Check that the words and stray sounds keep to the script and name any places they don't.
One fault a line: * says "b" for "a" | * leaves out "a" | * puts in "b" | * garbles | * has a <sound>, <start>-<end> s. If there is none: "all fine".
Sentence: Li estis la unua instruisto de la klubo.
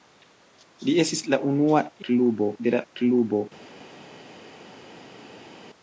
* says "klubo" for "instruisto"